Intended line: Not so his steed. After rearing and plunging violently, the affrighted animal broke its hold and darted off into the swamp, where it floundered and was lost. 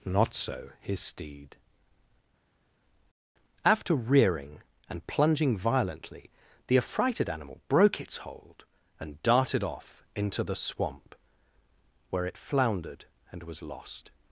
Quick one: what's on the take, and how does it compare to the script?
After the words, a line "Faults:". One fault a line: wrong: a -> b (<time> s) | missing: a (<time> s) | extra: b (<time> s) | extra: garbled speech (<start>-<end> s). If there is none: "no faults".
Not so his steed. After rearing and plunging violently, the affrighted animal broke its hold and darted off into the swamp, where it floundered and was lost.
Faults:
no faults